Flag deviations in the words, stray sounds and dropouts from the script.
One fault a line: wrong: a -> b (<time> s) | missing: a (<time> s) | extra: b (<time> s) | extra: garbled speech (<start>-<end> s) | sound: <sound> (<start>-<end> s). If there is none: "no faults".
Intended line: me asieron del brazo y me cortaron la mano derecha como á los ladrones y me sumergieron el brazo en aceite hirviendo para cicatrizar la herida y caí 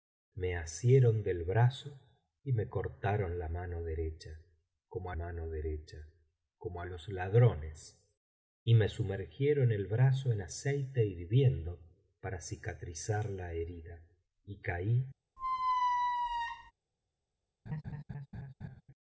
extra: mano derecha como (5.1 s)
sound: squeak (15.4-16.7 s)
sound: laugh (17.7-18.8 s)